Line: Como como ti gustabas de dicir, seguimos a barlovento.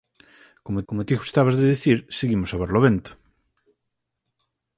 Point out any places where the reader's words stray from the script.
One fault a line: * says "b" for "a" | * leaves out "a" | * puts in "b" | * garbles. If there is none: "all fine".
all fine